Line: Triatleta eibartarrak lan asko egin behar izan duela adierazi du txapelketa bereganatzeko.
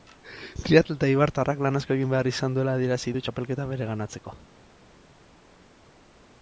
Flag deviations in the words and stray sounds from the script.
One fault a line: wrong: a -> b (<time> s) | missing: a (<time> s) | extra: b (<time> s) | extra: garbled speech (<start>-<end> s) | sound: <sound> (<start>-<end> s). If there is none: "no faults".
no faults